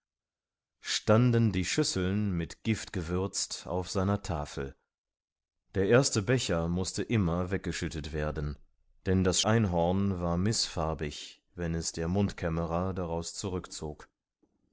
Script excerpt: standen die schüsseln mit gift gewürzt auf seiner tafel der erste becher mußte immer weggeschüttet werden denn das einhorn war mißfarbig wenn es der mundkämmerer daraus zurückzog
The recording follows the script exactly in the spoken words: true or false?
true